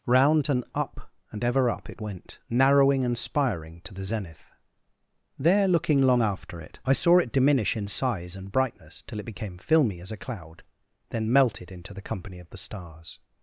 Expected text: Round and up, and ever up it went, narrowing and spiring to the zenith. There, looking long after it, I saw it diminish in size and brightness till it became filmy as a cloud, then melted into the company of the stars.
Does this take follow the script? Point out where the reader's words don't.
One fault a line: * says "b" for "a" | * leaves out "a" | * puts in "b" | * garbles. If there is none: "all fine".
all fine